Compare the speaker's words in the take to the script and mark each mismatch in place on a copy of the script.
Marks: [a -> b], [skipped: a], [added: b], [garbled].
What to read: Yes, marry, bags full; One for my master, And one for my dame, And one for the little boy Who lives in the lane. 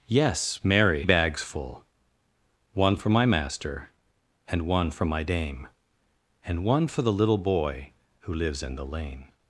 Yes, marry, bags full; One for my master, And one for my dame, And one for the little boy Who lives in the lane.